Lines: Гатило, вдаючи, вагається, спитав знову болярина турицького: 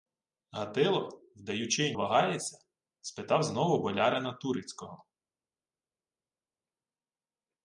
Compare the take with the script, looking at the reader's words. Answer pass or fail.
pass